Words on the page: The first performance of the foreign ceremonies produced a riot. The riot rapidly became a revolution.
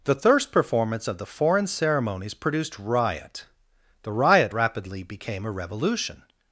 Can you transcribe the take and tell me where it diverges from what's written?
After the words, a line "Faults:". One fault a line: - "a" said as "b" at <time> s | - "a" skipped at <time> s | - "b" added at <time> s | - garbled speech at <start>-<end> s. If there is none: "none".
The thirst performance of the foreign ceremonies produced riot. The riot rapidly became a revolution.
Faults:
- "first" said as "thirst" at 0.1 s
- "a" skipped at 2.8 s